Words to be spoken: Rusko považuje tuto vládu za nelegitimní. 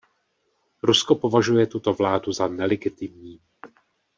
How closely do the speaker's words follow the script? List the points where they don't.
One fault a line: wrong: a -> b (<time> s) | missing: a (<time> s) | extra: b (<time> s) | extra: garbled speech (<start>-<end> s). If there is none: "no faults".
no faults